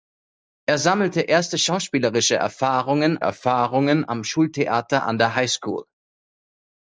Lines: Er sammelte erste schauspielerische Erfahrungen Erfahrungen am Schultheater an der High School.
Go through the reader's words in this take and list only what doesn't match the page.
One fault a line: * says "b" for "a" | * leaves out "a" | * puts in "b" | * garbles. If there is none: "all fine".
all fine